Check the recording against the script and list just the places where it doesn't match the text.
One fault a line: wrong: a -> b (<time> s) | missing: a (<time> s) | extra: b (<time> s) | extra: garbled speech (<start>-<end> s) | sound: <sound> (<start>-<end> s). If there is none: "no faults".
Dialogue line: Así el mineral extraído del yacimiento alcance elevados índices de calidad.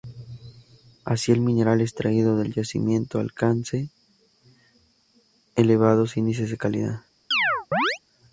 sound: chirp (7.3-8.0 s)